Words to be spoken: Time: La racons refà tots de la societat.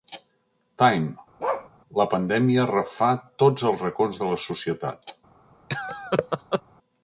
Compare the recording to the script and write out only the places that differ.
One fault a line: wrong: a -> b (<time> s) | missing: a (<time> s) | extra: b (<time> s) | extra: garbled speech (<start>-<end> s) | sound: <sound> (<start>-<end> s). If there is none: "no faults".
sound: bark (1.4-1.7 s)
wrong: racons -> pandèmia (2.1 s)
extra: els racons (3.7 s)
sound: laugh (5.7-6.6 s)